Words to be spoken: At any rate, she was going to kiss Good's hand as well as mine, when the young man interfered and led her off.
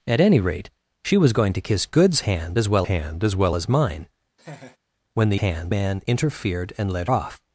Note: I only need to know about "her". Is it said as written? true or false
false